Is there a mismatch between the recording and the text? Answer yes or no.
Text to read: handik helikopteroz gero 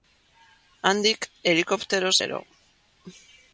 no